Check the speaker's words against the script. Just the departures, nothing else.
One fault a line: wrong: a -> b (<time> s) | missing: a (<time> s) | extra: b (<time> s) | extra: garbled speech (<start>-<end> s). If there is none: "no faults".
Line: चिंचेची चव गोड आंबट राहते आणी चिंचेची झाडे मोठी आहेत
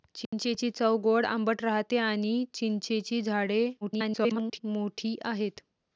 extra: garbled speech (3.8-4.6 s)